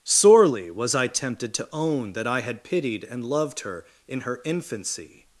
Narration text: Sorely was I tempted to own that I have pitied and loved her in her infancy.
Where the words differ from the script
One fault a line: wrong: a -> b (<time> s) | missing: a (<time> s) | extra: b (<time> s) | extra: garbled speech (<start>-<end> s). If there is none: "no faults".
wrong: have -> had (2.4 s)